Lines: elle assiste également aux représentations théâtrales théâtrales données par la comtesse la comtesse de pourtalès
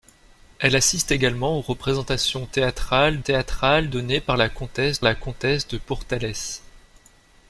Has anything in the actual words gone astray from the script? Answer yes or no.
no